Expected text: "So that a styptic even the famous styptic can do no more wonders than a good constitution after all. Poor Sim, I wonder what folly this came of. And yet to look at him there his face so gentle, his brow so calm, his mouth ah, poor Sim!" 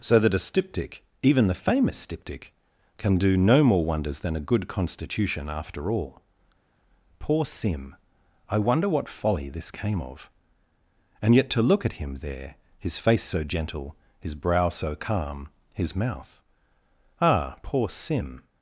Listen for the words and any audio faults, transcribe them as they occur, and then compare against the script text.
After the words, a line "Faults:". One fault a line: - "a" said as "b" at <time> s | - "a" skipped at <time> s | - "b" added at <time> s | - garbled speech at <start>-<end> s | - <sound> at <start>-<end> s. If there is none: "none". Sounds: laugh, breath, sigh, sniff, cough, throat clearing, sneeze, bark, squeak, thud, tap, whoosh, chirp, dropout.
"So that a styptic even the famous styptic can do no more wonders than a good constitution after all. Poor Sim, I wonder what folly this came of. And yet to look at him there his face so gentle, his brow so calm, his mouth ah, poor Sim!"
Faults:
none